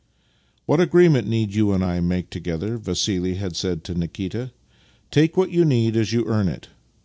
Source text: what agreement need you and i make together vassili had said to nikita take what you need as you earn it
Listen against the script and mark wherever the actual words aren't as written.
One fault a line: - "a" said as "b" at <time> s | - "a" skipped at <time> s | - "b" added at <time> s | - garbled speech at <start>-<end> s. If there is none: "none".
none